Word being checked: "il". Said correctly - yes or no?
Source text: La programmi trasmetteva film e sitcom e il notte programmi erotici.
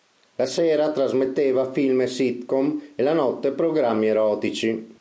no